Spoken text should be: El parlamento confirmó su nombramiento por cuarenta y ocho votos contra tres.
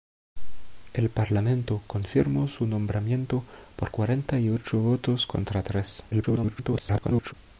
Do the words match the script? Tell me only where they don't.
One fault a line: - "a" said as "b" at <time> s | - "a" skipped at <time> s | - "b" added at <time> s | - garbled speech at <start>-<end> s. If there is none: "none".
- garbled speech at 6.1-7.3 s